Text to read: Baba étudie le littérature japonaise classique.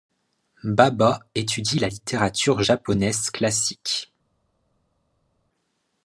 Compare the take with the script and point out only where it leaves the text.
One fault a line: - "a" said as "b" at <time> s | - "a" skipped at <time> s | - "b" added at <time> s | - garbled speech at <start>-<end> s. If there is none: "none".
- "le" said as "la" at 1.8 s